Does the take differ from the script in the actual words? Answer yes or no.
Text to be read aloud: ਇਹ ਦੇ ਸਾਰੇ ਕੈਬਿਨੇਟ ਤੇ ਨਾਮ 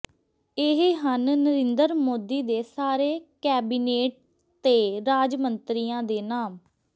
yes